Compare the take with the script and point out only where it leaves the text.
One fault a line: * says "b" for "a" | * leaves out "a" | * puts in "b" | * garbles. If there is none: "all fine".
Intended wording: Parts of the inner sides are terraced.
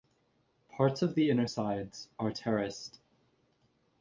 all fine